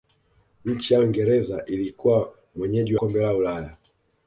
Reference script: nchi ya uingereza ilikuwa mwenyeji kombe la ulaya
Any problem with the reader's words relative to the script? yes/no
no